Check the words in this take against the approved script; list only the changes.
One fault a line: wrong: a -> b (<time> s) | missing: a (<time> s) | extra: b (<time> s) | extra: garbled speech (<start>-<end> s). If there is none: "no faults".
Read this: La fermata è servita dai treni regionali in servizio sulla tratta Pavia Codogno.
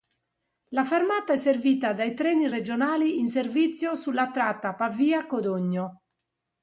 no faults